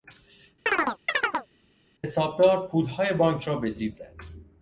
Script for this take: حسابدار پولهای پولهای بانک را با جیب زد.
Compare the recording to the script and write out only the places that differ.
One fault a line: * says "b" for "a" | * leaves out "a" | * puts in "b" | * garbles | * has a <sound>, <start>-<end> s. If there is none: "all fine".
* has a chirp, 0.7-1.5 s
* leaves out "پولهای"
* says "به" for "با"